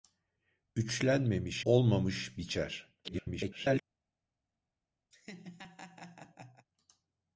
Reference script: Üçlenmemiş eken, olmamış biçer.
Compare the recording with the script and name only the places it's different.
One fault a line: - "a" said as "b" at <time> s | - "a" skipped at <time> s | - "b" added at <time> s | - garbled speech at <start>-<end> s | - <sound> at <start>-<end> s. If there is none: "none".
- "eken" skipped at 1.6 s
- garbled speech at 3.0-3.8 s
- laugh at 5.1-6.7 s